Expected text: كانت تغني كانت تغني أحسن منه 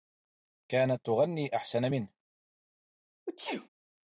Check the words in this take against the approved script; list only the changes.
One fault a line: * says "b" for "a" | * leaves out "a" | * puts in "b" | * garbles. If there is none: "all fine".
* leaves out "كانت تغني"